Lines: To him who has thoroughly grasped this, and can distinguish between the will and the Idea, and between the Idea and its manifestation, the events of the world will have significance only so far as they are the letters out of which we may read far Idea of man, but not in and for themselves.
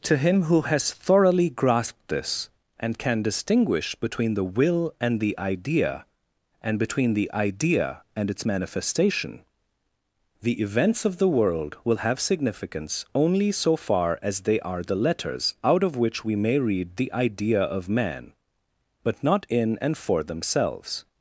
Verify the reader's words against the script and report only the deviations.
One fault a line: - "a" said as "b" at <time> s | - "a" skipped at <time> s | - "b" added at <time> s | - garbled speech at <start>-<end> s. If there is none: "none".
- "far" said as "the" at 17.0 s